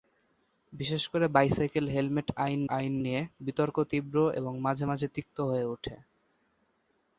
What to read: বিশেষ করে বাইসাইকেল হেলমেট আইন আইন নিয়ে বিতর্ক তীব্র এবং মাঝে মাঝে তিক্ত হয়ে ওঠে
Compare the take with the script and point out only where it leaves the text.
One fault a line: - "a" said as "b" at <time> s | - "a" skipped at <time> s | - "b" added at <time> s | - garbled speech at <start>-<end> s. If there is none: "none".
none